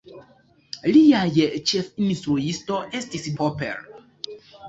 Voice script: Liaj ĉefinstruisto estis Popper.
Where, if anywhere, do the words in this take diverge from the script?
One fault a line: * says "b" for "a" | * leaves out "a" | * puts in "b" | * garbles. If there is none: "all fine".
all fine